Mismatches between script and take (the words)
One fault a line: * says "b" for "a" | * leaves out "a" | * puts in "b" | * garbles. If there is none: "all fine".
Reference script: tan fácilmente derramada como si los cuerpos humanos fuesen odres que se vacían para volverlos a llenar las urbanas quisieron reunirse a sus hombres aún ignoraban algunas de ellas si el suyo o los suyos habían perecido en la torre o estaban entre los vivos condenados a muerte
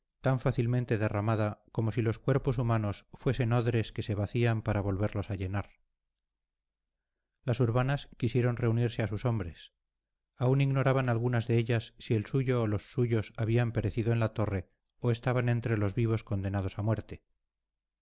all fine